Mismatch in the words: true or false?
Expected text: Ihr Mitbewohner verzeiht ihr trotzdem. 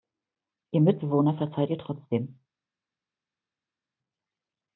false